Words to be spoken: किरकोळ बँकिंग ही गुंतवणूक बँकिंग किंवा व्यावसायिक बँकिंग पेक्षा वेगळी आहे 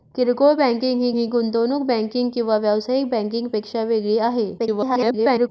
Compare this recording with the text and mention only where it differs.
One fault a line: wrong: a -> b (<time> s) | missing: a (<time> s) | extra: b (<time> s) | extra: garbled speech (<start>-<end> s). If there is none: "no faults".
extra: ही (1.2 s)
extra: garbled speech (4.6-5.5 s)